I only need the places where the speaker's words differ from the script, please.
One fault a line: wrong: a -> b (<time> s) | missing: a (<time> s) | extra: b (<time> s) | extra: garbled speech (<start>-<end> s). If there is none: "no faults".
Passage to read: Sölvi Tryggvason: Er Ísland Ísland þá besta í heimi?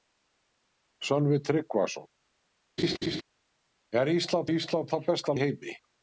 no faults